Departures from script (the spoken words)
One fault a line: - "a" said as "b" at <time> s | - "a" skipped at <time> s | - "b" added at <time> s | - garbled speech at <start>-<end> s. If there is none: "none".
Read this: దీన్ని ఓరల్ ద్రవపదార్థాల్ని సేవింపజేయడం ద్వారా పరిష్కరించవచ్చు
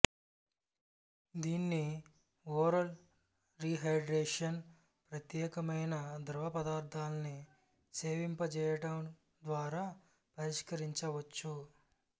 - "రీహైడ్రేషన్ ప్రత్యేకమైన" added at 3.6 s